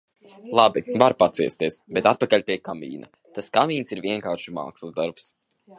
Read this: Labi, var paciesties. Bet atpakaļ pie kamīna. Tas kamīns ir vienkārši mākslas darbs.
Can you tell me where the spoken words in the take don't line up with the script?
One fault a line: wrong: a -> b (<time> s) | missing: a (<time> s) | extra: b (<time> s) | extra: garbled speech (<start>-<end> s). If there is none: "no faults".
no faults